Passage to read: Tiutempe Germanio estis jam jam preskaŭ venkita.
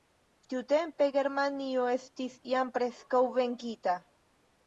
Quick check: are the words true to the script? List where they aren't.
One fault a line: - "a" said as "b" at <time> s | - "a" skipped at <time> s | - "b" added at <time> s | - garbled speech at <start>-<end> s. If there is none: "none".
- "jam" skipped at 2.7 s